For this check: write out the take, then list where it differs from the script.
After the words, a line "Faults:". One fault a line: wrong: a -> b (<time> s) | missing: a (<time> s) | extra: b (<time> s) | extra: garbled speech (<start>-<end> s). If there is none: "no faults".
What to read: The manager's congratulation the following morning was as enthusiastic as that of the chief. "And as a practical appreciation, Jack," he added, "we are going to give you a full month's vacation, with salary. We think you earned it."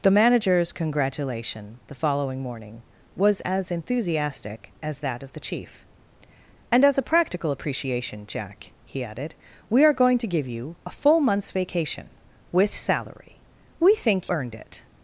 The manager's congratulation the following morning was as enthusiastic as that of the chief. "And as a practical appreciation, Jack," he added, "we are going to give you a full month's vacation, with salary. We think earned it."
Faults:
missing: you (14.3 s)